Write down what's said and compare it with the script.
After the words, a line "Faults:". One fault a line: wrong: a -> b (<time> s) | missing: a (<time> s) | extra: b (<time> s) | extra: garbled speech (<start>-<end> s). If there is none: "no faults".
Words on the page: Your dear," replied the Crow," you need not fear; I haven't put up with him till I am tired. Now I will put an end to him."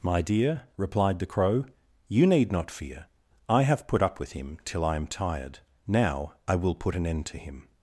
My dear," replied the Crow," you need not fear; I have put up with him till I am tired. Now I will put an end to him."
Faults:
wrong: Your -> My (0.0 s)
wrong: haven't -> have (3.6 s)